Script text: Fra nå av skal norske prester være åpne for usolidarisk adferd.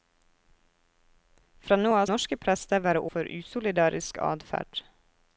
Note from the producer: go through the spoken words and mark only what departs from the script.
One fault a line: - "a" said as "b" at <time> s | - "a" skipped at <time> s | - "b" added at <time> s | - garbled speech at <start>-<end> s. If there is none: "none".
- "skal" skipped at 2.1 s
- "åpne" skipped at 3.0 s